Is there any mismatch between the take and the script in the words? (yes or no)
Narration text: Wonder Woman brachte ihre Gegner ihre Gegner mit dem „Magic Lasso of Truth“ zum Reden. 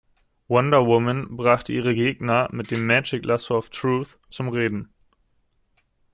yes